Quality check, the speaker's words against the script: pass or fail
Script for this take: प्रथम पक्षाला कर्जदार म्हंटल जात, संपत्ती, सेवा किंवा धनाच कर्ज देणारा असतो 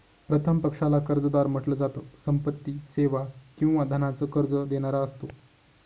pass